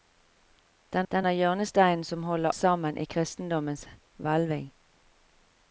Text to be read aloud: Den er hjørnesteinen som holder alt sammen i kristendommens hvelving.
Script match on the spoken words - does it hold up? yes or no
no